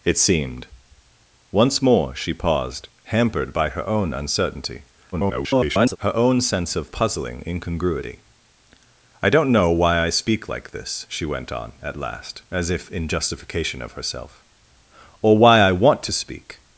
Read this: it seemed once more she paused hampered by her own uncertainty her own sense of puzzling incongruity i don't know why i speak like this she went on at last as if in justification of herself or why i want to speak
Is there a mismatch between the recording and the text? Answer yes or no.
yes